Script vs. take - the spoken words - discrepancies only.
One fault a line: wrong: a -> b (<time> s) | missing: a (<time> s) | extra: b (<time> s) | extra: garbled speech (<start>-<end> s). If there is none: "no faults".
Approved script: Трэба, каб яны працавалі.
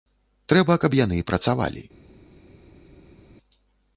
no faults